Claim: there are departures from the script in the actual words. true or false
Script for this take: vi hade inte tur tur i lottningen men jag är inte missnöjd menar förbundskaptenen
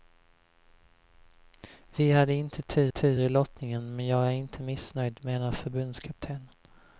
false